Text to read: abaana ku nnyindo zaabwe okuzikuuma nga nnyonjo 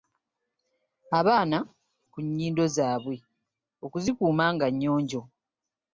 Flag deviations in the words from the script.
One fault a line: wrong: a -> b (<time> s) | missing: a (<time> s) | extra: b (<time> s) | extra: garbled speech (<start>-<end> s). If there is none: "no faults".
no faults